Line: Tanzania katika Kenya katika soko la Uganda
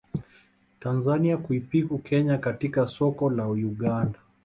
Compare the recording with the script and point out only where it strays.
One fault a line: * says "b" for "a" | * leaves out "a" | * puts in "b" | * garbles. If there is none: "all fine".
* says "kuipiku" for "katika"